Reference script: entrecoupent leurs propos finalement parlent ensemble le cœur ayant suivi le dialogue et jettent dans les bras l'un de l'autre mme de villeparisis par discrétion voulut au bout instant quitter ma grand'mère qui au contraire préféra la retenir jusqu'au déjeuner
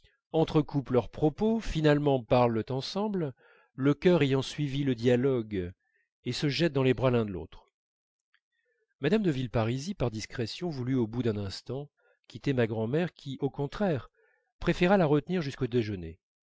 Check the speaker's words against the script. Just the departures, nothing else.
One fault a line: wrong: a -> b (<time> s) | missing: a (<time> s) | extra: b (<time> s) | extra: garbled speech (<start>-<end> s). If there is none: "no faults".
extra: se (6.3 s)
extra: d'un (11.2 s)